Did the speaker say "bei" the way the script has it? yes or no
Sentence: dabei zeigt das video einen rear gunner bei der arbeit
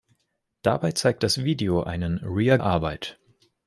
no